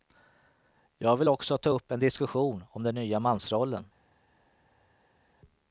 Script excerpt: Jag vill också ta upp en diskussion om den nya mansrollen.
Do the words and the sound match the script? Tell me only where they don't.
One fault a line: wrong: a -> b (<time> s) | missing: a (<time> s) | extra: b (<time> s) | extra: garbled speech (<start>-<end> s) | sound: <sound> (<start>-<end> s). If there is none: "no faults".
no faults